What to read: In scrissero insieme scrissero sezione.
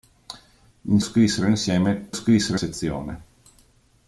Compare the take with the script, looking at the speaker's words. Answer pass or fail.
pass